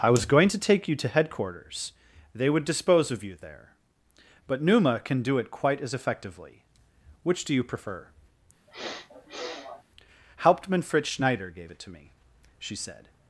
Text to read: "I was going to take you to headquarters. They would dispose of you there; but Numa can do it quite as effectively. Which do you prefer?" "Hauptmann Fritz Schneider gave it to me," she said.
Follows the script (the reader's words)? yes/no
yes